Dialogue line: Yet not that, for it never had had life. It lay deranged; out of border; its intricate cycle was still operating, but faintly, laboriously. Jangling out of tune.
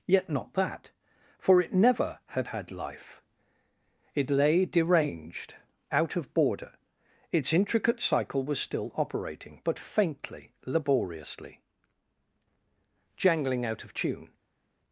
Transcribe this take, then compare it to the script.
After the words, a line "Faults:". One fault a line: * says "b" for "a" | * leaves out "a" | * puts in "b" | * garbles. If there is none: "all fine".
Yet not that, for it never had had life. It lay deranged; out of border; its intricate cycle was still operating, but faintly, laboriously. Jangling out of tune.
Faults:
all fine